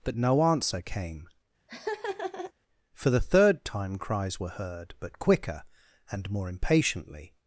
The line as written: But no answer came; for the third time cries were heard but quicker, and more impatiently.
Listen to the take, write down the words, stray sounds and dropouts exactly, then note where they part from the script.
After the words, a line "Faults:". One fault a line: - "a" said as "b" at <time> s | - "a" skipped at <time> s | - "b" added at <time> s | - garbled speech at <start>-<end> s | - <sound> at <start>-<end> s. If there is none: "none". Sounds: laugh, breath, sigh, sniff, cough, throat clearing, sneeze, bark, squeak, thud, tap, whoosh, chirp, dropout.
But no answer came; for the third time cries were heard but quicker, and more impatiently.
Faults:
- laugh at 1.7-2.5 s